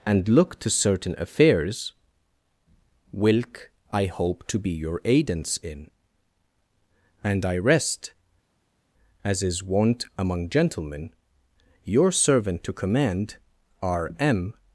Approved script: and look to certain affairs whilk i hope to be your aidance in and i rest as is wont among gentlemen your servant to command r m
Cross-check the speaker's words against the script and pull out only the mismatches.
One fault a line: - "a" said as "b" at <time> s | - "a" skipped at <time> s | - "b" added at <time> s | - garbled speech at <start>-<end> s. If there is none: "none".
none